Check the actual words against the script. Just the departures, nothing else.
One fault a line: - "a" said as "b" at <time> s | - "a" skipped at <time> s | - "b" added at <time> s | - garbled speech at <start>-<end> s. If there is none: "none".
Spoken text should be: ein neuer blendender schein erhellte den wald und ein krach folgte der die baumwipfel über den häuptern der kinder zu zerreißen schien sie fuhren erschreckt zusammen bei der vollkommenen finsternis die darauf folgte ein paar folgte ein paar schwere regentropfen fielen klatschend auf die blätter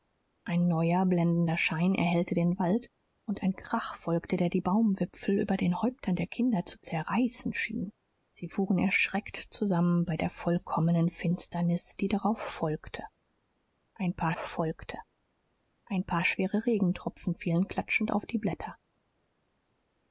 none